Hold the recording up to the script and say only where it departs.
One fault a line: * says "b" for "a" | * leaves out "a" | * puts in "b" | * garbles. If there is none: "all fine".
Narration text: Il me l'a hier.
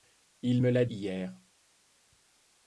all fine